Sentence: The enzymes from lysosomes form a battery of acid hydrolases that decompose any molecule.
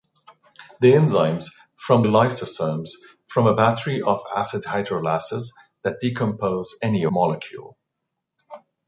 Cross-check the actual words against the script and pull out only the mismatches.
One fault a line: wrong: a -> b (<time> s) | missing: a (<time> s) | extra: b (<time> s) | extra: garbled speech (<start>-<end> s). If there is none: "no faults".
no faults